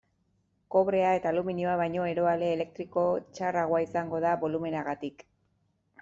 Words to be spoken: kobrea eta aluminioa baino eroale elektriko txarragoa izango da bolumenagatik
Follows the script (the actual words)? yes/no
yes